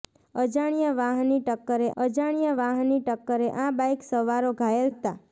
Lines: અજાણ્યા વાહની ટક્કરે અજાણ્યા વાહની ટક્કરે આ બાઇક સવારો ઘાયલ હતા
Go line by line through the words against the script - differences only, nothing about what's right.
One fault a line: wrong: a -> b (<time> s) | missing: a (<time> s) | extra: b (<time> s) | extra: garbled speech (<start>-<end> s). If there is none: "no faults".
no faults